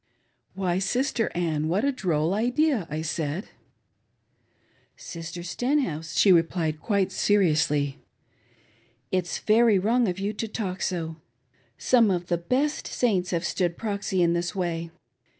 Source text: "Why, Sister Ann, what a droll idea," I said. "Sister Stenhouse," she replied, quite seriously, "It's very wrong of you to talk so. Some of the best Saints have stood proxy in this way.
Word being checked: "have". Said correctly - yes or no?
yes